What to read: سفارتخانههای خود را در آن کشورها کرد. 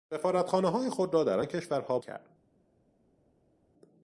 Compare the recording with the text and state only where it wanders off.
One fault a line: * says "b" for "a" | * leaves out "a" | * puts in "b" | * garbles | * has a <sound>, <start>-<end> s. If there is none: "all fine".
all fine